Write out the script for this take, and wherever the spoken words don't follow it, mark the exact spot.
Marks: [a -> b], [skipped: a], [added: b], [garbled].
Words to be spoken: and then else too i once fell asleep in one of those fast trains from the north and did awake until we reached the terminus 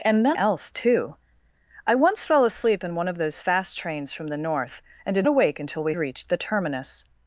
and then else too i once fell asleep in one of those fast trains from the north and did awake until we reached the terminus